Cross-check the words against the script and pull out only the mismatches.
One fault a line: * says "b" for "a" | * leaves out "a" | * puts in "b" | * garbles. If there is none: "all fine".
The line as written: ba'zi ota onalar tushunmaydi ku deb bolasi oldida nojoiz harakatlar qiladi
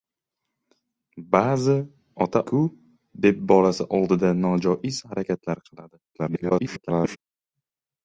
* leaves out "onalar tushunmaydi"
* garbles